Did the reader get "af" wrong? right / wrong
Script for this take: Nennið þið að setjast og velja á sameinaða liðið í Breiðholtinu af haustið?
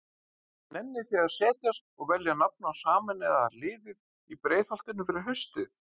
wrong